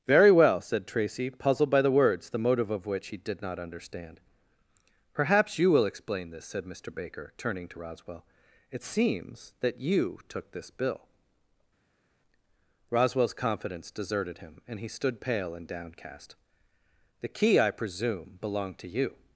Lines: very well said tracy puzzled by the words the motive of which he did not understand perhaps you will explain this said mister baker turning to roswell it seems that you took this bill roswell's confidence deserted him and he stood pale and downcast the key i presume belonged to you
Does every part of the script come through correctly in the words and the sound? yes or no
yes